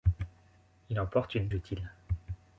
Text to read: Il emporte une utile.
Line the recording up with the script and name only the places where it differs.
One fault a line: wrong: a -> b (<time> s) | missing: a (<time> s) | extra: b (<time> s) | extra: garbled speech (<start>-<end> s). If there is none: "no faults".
no faults